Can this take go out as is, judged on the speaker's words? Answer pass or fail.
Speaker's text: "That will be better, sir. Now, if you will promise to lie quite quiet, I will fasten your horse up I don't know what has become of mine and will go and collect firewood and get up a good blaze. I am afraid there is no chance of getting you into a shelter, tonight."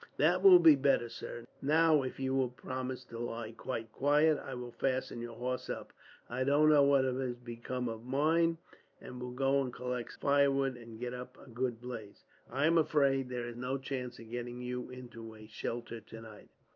pass